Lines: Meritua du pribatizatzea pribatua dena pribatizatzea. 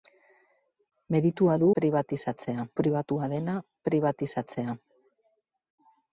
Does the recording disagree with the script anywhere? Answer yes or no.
no